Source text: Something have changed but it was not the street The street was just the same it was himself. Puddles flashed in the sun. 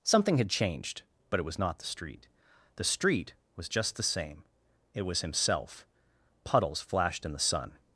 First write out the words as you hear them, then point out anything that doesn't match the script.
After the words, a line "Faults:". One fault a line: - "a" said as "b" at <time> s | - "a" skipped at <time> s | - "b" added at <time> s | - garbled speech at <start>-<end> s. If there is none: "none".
Something had changed but it was not the street The street was just the same it was himself. Puddles flashed in the sun.
Faults:
- "have" said as "had" at 0.4 s